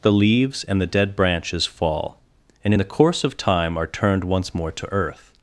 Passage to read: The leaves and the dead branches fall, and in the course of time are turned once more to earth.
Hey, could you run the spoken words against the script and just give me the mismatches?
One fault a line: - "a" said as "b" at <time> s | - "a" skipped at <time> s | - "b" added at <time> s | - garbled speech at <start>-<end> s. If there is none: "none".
none